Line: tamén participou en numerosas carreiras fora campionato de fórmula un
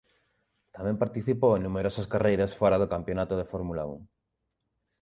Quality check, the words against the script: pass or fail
fail